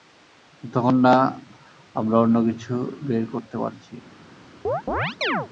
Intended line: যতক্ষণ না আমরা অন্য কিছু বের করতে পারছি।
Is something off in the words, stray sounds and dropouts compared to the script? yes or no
yes